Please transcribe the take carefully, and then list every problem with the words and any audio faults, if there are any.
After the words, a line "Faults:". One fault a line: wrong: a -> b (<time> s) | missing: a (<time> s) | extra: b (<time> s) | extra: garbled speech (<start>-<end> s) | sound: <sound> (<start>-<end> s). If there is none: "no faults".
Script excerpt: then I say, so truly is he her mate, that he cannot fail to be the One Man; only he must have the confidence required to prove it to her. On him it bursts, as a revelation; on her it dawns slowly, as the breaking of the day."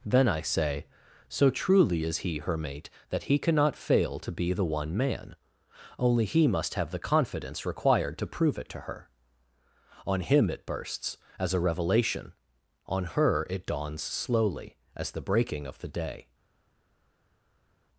then I say, so truly is he her mate, that he cannot fail to be the One Man; only he must have the confidence required to prove it to her. On him it bursts, as a revelation; on her it dawns slowly, as the breaking of the day."
Faults:
no faults